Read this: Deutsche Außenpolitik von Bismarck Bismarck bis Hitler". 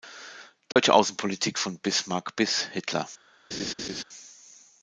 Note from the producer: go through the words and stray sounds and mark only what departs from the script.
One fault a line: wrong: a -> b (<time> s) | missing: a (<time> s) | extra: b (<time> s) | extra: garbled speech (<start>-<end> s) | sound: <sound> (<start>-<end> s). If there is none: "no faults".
sound: dropout (0.7-0.8 s)
missing: Bismarck (2.4 s)
sound: laugh (3.5-4.0 s)